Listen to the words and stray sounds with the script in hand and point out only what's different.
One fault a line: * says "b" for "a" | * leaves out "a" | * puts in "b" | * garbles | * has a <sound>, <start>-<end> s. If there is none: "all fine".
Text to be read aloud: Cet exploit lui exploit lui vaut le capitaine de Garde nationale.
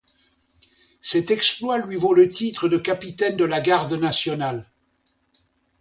* says "vaut le titre de" for "exploit lui vaut le"
* puts in "la"